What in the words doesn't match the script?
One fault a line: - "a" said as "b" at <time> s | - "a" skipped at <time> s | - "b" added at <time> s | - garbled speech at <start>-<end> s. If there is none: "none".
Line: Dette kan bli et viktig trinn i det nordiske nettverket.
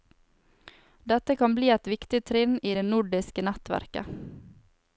none